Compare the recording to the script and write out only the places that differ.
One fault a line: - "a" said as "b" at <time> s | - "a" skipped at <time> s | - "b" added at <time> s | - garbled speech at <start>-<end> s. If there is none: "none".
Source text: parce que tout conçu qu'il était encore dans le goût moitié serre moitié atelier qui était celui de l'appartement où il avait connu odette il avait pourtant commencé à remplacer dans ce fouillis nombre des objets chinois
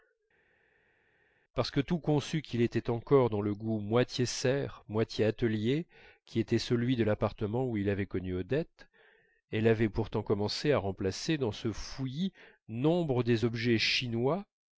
- "il" said as "elle" at 9.5 s